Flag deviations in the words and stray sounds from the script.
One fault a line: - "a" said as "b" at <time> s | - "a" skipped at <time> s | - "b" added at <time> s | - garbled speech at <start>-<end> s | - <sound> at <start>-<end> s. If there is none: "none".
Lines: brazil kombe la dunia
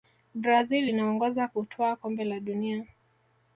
- "inaongoza kutwaa" added at 0.8 s